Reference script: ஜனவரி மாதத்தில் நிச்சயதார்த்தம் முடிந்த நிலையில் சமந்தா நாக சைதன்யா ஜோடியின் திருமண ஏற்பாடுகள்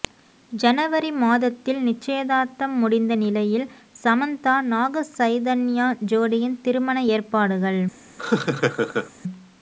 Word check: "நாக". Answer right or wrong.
right